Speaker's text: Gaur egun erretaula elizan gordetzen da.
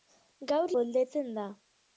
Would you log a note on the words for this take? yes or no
yes